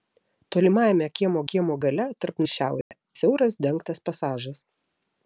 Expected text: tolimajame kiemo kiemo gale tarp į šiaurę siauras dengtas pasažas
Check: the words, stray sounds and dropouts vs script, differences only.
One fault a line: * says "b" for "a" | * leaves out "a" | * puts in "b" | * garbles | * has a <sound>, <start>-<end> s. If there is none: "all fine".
* has a dropout, 2.8-2.9 s